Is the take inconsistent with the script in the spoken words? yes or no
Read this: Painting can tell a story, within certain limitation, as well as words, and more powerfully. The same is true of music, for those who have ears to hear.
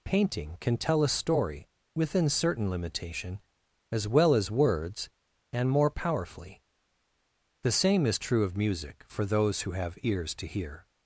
no